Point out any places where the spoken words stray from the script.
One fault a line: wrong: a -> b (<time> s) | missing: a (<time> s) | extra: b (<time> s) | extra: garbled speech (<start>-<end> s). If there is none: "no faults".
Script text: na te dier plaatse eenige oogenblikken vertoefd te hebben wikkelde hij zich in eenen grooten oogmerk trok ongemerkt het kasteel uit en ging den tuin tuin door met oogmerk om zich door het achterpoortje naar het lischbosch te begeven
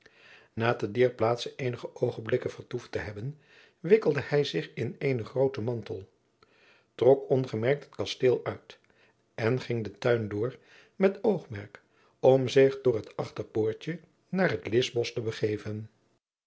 wrong: oogmerk -> mantel (5.6 s)
missing: tuin (10.3 s)